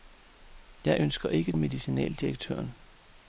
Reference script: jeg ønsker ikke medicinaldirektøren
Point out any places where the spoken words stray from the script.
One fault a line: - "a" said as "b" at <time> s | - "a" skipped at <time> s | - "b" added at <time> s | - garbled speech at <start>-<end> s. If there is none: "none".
none